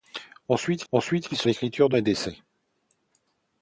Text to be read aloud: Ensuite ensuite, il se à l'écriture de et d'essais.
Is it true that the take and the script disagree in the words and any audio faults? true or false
false